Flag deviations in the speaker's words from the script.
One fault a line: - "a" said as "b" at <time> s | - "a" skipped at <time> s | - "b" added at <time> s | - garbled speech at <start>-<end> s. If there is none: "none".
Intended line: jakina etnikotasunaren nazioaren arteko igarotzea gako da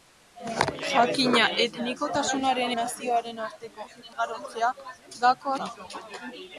none